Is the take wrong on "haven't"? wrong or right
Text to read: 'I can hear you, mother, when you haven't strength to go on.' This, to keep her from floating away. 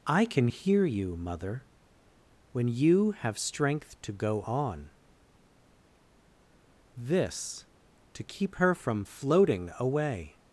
wrong